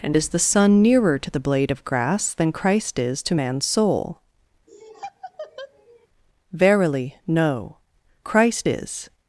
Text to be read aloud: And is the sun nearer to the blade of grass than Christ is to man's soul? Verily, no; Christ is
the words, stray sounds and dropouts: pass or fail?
fail